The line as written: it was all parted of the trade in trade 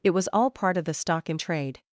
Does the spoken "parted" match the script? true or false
false